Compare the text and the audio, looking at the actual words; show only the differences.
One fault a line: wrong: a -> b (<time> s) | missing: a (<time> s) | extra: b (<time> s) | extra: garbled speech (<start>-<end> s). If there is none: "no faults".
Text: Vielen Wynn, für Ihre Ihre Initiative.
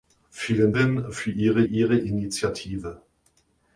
no faults